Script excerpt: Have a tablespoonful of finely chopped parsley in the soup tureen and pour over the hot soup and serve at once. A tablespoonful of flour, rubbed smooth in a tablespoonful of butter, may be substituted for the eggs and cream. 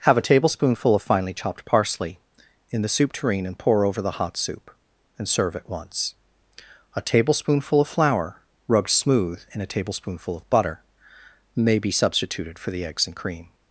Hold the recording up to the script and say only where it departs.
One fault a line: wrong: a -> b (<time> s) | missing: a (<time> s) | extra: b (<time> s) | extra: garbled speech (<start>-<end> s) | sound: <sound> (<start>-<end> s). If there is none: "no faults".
no faults